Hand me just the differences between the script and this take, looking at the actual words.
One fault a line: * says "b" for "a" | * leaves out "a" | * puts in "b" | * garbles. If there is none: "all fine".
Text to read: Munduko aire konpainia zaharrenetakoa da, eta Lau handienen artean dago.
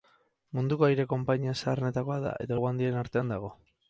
all fine